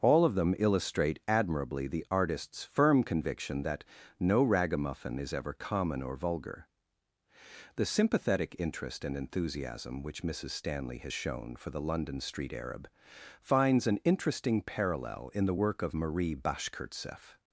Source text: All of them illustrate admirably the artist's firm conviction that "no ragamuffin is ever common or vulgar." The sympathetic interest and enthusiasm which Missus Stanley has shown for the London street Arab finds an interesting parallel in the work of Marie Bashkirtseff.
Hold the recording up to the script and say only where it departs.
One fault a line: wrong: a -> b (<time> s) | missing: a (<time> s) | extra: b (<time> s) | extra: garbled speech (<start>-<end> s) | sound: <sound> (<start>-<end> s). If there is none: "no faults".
no faults